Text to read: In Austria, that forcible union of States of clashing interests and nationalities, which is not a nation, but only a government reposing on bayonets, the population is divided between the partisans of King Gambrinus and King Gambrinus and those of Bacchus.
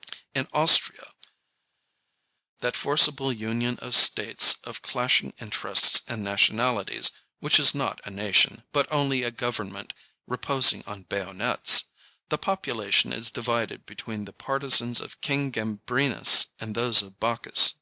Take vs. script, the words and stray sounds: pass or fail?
fail